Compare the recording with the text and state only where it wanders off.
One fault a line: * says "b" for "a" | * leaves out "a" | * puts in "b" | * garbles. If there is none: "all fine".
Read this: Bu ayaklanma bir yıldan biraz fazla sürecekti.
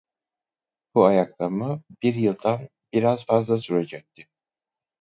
all fine